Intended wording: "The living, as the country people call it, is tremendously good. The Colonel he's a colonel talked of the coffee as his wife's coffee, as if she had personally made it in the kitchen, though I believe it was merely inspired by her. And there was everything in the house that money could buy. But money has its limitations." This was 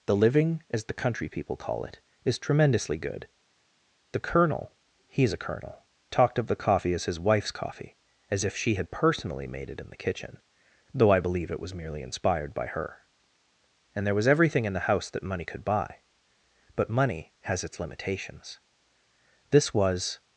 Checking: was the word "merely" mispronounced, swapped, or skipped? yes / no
no